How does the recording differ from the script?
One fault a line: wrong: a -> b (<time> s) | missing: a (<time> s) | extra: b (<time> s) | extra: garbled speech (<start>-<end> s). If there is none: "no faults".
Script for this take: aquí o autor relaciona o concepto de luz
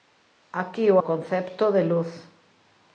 missing: autor relaciona (1.0 s)